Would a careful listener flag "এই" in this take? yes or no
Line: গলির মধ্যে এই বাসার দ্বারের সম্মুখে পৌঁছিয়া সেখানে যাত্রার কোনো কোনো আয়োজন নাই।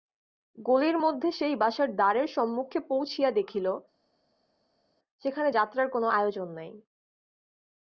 yes